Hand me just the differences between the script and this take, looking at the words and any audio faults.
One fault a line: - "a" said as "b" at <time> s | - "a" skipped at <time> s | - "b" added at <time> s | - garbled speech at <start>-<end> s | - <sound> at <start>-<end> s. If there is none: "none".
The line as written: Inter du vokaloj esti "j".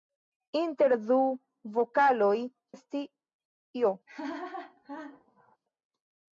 - laugh at 4.1-5.6 s